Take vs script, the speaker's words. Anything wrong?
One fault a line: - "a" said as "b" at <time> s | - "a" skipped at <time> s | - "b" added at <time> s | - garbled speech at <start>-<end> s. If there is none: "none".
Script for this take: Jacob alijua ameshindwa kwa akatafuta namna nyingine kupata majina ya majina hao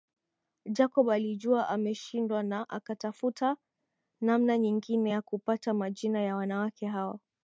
- "kwa" said as "na" at 2.4 s
- "ya" added at 5.1 s
- "majina" said as "wanawake" at 6.4 s